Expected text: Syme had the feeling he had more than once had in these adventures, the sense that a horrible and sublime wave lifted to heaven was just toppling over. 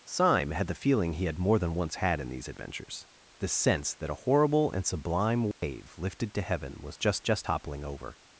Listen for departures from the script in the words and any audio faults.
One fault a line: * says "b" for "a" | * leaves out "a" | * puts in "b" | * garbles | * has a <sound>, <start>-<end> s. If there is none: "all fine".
* has a dropout, 5.5-5.6 s
* puts in "just"